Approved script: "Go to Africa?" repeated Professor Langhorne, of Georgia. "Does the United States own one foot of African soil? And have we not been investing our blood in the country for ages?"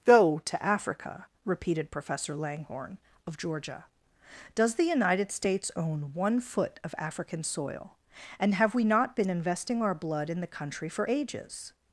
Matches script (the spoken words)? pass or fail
pass